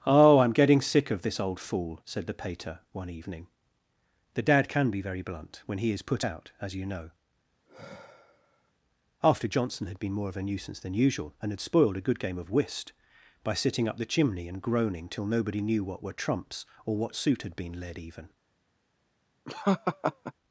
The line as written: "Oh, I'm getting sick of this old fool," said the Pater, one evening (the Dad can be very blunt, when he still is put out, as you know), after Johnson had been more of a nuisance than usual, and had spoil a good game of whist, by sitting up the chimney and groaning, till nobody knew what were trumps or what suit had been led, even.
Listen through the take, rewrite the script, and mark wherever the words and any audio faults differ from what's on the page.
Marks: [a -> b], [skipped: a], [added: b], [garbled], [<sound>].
"Oh, I'm getting sick of this old fool," said the Pater, one evening (the Dad can be very blunt, when he [skipped: still] is put out, as you know), [sigh] after Johnson had been more of a nuisance than usual, and had [spoil -> spoiled] a good game of whist, by sitting up the chimney and groaning, till nobody knew what were trumps or what suit had been led, even. [laugh]